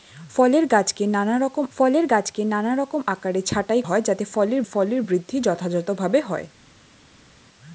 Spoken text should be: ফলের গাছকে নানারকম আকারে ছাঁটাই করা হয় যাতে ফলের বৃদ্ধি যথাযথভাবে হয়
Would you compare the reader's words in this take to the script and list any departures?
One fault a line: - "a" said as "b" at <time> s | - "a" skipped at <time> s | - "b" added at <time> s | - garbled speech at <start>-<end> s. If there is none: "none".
- "ফলের গাছকে নানারকম" added at 1.7 s
- "করা" skipped at 3.8 s
- "ফলের" added at 4.6 s